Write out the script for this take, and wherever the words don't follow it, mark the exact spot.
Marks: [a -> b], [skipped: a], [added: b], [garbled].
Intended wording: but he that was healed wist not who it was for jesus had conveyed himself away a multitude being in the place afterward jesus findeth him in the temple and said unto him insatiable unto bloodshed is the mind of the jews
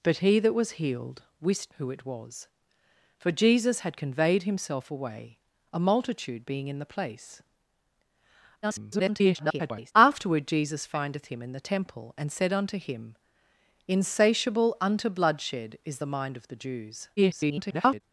but he that was healed wist [skipped: not] who it was for jesus had conveyed himself away a multitude being in the place [garbled] afterward jesus findeth him in the temple and said unto him insatiable unto bloodshed is the mind of the jews [garbled]